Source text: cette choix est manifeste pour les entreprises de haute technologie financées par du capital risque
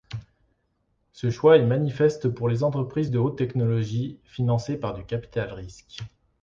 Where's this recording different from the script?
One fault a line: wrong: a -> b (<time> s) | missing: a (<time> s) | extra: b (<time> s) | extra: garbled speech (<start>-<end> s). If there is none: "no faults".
wrong: cette -> ce (1.1 s)